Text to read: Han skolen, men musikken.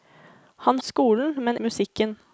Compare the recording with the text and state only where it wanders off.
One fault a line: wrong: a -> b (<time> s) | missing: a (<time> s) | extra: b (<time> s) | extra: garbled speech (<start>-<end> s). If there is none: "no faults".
no faults